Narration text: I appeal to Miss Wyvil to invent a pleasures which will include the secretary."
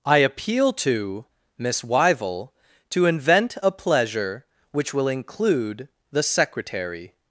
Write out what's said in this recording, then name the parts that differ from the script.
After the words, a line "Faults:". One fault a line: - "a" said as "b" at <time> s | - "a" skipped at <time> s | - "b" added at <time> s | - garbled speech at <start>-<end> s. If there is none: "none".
I appeal to Miss Wyvil to invent a pleasure which will include the secretary."
Faults:
- "pleasures" said as "pleasure" at 3.7 s